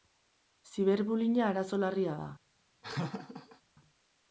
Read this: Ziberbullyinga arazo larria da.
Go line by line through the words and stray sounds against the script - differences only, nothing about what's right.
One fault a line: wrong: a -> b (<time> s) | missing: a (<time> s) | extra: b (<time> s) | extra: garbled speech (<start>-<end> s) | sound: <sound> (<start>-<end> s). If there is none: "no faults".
sound: laugh (2.8-3.6 s)